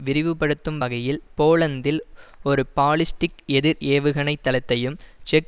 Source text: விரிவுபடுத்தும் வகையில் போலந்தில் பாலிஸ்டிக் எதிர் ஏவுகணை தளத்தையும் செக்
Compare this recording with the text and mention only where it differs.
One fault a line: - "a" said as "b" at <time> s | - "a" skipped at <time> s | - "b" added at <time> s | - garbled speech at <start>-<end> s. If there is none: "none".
- "ஒரு" added at 2.4 s